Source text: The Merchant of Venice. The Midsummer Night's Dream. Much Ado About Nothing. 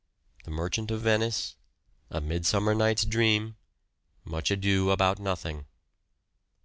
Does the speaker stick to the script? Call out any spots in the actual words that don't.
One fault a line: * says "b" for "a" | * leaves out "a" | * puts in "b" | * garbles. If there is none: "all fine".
* says "A" for "The"